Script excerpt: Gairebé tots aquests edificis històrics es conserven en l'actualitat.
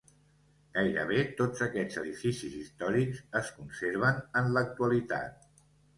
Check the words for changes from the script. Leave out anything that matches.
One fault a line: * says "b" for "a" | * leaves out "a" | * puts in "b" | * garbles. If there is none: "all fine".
all fine